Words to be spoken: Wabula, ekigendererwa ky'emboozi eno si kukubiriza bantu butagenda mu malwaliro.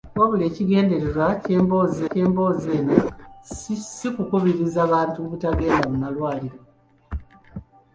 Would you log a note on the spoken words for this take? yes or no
yes